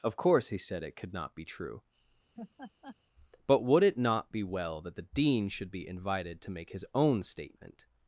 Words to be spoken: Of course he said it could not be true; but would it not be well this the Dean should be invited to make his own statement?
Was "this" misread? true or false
true